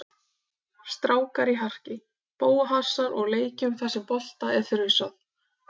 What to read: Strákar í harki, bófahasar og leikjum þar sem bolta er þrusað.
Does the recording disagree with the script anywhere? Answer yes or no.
no